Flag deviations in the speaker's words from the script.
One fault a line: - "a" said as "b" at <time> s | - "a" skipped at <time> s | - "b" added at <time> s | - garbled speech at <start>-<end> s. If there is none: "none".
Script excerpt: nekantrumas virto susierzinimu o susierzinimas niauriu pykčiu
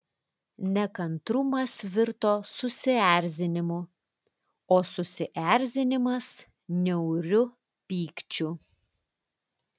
none